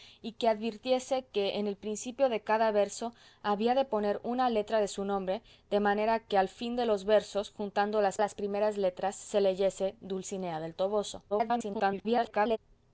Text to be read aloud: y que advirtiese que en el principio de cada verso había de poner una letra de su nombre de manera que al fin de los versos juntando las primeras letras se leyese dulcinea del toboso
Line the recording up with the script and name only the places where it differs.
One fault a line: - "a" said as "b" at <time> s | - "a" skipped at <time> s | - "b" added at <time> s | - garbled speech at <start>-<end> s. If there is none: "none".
- "las" added at 8.2 s
- garbled speech at 11.3-12.6 s